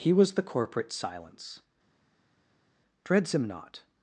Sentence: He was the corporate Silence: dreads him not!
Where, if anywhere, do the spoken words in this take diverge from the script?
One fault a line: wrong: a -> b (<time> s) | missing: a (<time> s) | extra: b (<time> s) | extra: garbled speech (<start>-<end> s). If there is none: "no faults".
no faults